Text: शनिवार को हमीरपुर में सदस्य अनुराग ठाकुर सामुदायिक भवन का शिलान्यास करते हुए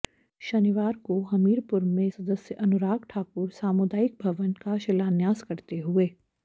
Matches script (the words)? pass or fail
pass